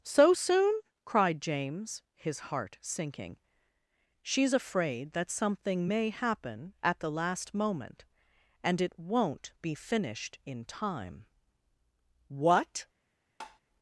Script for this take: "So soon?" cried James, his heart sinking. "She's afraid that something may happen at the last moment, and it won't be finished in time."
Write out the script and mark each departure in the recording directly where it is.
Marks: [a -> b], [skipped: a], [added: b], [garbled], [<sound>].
"So soon?" cried James, his heart sinking. "She's afraid that something may happen at the last moment, and it won't be finished in time." [added: What] [tap]